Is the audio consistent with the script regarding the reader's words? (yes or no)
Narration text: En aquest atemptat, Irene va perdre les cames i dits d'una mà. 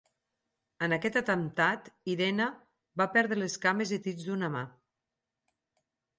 yes